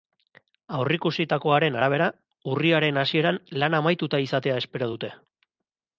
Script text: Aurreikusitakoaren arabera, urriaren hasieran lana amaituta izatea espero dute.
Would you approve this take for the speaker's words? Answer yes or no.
yes